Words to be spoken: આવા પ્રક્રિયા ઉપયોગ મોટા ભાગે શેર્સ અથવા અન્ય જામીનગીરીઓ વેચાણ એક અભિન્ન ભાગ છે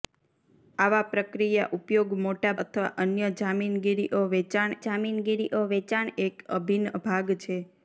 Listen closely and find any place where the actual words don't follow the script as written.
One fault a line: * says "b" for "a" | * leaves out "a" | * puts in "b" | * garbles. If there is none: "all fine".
* says "અથવા અન્ય જામીનગીરીઓ વેચાણ" for "ભાગે શેર્સ અથવા અન્ય"